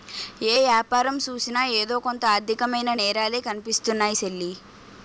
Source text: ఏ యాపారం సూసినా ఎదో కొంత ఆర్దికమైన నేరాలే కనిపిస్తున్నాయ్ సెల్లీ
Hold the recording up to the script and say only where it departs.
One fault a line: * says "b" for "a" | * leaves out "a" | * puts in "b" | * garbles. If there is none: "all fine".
all fine